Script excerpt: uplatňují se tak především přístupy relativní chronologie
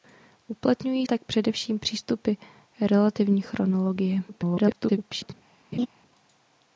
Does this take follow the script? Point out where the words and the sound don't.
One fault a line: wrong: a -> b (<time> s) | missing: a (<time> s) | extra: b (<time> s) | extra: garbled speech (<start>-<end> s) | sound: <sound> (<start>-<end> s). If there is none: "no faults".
missing: se (1.1 s)
extra: garbled speech (4.3-5.3 s)
sound: laugh (5.7-5.9 s)